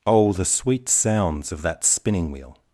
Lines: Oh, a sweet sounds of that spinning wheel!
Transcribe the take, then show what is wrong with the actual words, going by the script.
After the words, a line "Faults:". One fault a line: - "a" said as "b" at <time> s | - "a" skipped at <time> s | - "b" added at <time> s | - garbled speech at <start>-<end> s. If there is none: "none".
Oh, the sweet sounds of that spinning wheel!
Faults:
- "a" said as "the" at 0.3 s